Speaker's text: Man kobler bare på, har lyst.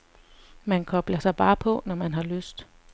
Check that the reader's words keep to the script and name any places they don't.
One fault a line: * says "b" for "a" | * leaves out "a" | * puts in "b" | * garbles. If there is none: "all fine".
* puts in "sig"
* puts in "når man"